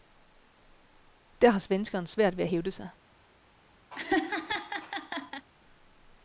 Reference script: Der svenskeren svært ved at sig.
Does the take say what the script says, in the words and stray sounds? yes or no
no